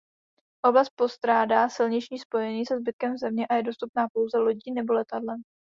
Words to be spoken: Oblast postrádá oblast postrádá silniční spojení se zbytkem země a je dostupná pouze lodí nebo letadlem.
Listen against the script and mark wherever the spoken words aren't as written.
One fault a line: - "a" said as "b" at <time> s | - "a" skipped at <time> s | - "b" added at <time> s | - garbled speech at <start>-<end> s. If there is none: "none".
- "oblast postrádá" skipped at 1.7 s